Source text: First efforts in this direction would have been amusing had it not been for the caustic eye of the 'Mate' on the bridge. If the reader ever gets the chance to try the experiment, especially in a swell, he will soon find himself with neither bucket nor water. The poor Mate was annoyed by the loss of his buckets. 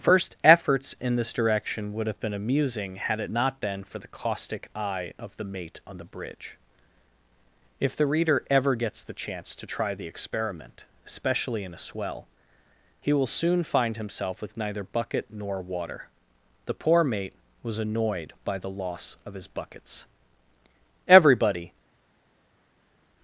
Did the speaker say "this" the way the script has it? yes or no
yes